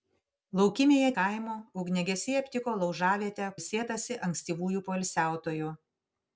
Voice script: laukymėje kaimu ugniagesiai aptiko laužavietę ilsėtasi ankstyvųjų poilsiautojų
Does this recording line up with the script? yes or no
yes